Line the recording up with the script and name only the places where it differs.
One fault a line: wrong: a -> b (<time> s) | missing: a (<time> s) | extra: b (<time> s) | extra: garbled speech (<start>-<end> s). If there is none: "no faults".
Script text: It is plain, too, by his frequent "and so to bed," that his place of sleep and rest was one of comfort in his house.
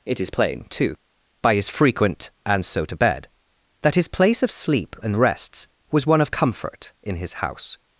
wrong: rest -> rests (5.2 s)